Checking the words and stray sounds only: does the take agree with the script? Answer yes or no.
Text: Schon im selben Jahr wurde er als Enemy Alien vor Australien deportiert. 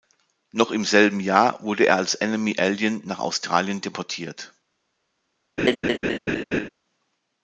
no